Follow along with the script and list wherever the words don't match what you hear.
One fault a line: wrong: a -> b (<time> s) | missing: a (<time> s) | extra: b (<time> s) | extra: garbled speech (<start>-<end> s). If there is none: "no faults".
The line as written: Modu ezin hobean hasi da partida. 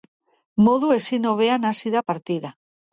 no faults